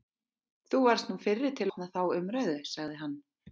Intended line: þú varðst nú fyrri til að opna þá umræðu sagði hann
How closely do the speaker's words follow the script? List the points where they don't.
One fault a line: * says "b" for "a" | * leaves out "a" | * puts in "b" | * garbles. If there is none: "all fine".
* leaves out "að"